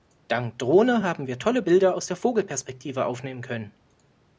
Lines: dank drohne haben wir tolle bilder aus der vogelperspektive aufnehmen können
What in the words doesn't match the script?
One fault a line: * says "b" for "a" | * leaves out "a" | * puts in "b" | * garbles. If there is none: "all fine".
all fine